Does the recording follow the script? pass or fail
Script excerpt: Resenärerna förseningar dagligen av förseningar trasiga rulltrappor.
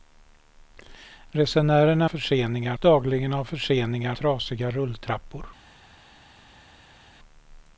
pass